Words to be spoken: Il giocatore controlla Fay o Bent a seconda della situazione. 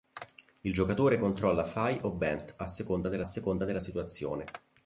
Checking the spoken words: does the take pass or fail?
fail